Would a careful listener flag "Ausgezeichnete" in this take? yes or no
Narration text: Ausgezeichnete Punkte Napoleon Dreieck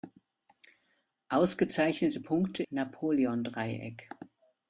no